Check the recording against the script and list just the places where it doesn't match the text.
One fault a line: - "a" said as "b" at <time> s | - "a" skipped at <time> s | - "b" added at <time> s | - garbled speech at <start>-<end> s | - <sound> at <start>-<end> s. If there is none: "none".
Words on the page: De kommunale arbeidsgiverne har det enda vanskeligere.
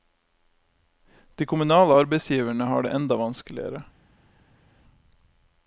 none